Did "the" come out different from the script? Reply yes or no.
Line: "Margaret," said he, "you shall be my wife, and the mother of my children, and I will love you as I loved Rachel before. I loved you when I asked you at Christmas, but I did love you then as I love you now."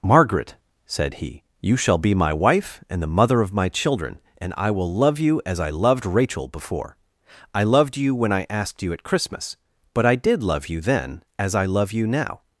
no